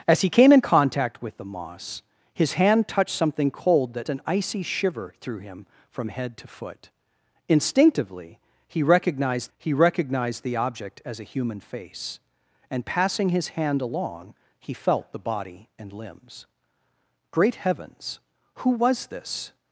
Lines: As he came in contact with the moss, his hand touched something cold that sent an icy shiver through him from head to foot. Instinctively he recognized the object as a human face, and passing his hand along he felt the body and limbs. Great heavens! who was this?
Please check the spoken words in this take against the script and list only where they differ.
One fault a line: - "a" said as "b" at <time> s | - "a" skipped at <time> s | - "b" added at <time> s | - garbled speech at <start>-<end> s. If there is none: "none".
- "sent" skipped at 4.1 s
- "he recognized" added at 9.6 s